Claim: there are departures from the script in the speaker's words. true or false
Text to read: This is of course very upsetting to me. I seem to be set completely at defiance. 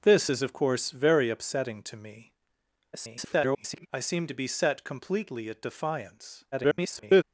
true